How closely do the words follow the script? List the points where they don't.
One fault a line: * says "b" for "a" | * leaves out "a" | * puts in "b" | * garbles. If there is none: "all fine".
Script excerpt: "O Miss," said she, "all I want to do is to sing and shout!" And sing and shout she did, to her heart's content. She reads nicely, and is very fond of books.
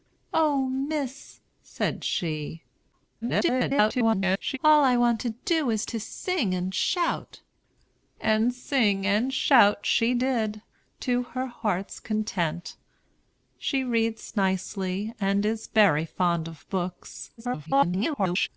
* garbles
* garbles